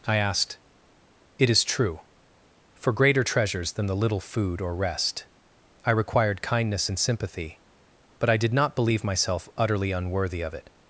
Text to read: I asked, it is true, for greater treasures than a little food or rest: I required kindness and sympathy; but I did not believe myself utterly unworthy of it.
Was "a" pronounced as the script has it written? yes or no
no